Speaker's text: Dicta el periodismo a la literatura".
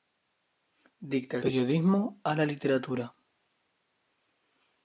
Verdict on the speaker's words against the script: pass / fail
pass